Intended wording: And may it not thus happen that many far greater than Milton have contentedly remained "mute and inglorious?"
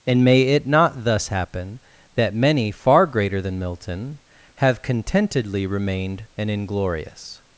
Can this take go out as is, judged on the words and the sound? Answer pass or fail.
fail